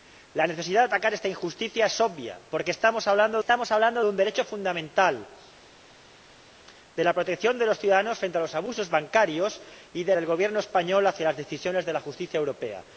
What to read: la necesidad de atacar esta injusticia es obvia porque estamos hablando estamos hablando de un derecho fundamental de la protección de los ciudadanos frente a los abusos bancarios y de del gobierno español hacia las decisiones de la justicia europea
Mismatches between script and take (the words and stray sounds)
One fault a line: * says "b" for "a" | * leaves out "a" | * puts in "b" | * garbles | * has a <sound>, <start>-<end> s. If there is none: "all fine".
all fine